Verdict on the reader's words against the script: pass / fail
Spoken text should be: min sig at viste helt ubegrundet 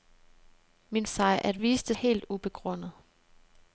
pass